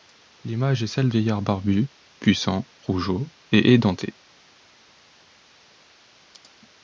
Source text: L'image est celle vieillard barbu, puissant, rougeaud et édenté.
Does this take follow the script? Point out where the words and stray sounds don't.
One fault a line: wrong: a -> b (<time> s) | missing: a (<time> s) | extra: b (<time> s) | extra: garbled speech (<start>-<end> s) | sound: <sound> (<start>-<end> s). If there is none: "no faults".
no faults